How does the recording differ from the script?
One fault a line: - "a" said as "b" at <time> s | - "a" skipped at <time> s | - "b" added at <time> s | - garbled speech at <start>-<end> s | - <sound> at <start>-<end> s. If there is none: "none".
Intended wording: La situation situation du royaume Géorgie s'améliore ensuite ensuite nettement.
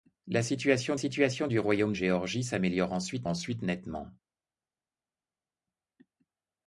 none